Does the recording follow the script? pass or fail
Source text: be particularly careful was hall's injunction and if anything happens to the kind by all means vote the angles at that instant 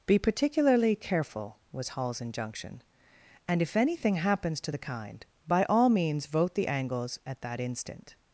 pass